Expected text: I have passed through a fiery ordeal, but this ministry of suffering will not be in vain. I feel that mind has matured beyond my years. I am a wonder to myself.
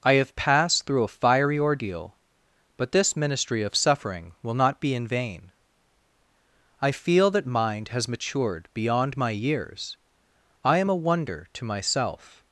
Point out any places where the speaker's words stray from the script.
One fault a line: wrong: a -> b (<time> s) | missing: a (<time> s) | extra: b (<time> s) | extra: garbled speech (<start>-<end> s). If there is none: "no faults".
no faults